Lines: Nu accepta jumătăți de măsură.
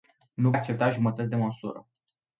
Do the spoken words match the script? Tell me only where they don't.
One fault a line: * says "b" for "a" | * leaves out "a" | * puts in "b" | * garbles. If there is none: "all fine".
all fine